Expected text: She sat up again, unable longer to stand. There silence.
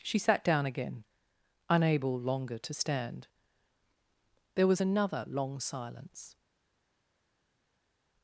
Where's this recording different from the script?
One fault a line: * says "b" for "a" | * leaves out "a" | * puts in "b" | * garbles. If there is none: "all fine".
* says "down" for "up"
* puts in "was another long"